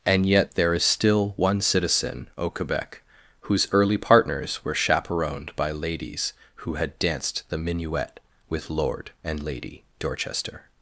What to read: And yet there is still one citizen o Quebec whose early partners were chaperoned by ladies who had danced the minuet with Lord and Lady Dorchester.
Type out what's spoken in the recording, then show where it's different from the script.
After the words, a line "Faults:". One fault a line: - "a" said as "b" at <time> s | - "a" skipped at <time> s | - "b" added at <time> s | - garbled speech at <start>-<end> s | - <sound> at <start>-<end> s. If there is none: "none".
And yet there is still one citizen o Quebec whose early partners were chaperoned by ladies who had danced the minuet with Lord and Lady Dorchester.
Faults:
none